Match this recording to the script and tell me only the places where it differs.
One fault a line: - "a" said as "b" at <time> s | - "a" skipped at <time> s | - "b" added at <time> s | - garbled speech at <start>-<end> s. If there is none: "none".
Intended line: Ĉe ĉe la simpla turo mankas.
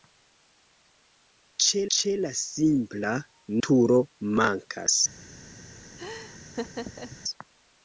none